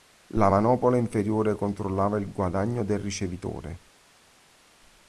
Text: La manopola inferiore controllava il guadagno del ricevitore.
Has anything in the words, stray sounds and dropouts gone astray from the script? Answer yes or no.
no